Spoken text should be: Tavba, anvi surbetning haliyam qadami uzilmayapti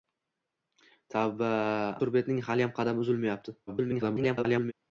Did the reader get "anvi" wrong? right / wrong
wrong